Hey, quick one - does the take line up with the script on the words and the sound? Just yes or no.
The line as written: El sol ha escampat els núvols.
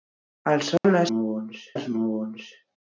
no